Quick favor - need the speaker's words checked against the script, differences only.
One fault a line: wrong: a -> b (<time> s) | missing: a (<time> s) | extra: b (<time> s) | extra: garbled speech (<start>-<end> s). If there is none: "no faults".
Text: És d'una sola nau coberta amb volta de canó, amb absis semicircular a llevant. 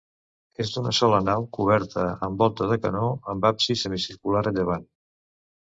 no faults